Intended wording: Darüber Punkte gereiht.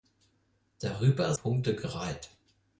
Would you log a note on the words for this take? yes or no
no